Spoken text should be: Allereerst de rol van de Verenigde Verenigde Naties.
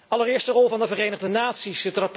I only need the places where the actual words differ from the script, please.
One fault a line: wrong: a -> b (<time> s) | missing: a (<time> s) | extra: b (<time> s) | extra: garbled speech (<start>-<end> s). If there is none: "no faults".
missing: Verenigde (1.3 s)